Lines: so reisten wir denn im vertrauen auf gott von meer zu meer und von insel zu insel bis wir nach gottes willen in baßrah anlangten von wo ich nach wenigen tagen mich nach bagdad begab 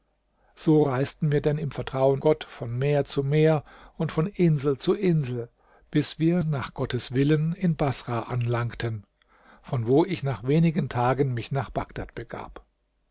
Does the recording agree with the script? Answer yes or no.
no